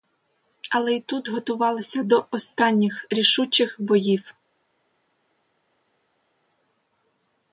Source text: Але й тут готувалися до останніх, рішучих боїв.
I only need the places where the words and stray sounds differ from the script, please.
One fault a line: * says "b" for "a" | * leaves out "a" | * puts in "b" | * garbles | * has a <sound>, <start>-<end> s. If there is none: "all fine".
all fine